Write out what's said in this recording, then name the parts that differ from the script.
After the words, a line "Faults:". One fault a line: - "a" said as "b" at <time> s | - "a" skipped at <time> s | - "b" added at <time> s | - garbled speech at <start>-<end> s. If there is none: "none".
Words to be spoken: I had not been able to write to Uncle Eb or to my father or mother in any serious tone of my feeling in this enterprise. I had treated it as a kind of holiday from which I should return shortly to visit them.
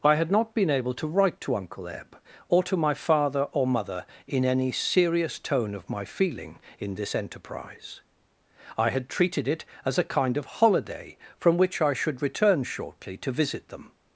I had not been able to write to Uncle Eb or to my father or mother in any serious tone of my feeling in this enterprise. I had treated it as a kind of holiday from which I should return shortly to visit them.
Faults:
none